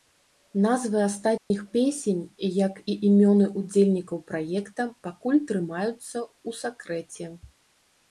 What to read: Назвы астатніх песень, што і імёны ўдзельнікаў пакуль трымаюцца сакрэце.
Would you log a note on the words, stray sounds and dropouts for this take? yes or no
yes